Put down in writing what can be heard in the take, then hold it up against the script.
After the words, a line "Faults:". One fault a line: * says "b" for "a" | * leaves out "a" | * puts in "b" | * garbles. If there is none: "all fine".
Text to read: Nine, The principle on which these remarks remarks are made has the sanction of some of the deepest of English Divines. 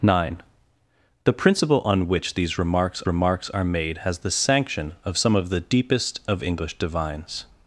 Nine, The principle on which these remarks remarks are made has the sanction of some of the deepest of English Divines.
Faults:
all fine